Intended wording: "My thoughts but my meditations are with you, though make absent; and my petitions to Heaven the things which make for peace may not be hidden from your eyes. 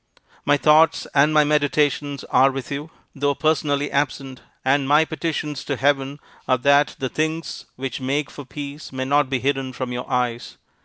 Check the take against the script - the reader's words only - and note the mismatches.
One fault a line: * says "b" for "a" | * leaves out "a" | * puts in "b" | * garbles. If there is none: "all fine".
* says "and" for "but"
* says "personally" for "make"
* puts in "are that"